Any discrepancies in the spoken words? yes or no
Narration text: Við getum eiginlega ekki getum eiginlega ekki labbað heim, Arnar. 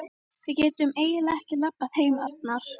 yes